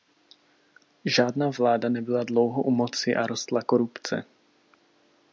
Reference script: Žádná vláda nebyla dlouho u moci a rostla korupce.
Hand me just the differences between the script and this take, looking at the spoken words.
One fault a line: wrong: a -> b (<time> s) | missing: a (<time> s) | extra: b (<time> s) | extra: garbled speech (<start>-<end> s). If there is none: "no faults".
no faults